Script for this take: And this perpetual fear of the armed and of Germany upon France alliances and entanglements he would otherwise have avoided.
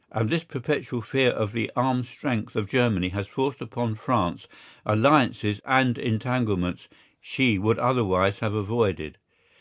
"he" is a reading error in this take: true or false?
true